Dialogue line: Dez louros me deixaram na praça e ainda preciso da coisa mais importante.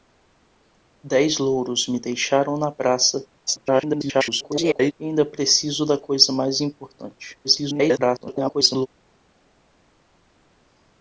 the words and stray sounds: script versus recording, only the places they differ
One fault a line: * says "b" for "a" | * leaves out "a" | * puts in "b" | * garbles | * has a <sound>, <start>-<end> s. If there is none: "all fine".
* garbles
* garbles